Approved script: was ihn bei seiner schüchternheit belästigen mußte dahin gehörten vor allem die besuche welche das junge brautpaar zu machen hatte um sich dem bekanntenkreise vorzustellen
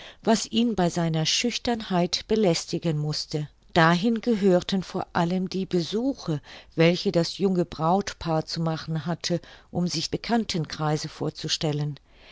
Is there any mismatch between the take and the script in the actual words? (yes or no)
yes